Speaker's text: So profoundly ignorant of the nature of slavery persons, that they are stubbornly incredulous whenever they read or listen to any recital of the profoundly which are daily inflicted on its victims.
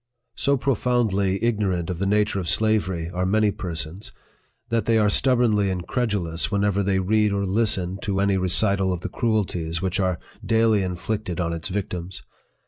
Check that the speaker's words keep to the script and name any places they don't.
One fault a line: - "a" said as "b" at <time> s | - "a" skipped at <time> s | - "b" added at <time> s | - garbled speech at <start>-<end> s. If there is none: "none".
- "are many" added at 3.1 s
- "profoundly" said as "cruelties" at 9.1 s